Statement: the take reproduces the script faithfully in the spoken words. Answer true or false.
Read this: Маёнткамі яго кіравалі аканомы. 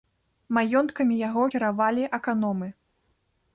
true